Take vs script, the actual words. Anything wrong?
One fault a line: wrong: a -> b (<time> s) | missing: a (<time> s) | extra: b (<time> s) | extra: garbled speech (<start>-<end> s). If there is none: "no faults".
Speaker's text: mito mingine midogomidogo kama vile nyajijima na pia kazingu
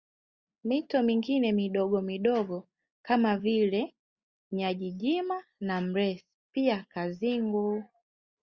extra: mresi (5.8 s)